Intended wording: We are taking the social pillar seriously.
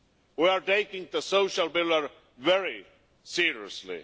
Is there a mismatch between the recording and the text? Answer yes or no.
yes